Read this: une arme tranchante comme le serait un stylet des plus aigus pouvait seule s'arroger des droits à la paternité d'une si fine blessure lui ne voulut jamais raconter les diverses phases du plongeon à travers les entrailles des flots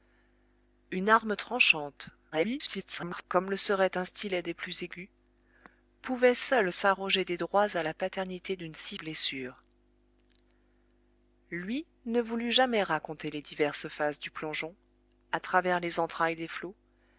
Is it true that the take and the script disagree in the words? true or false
true